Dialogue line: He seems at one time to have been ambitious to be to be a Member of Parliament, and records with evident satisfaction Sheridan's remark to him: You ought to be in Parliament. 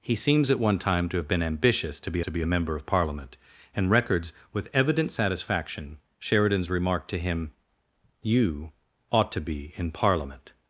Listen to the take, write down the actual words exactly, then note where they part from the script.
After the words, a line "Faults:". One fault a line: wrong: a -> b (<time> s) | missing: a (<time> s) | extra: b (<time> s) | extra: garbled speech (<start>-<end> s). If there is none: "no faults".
He seems at one time to have been ambitious to be to be a Member of Parliament, and records with evident satisfaction Sheridan's remark to him: You ought to be in Parliament.
Faults:
no faults